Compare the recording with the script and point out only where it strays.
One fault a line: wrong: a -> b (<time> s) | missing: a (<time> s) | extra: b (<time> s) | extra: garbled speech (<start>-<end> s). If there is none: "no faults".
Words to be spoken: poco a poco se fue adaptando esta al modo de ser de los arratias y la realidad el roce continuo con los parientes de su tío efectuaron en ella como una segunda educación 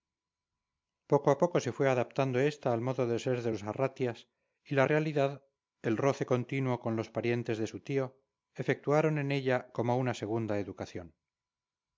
no faults